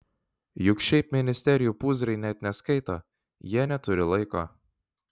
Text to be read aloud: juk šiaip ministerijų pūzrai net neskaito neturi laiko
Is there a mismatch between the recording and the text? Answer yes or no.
yes